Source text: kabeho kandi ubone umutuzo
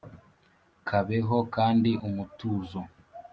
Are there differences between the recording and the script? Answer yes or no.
yes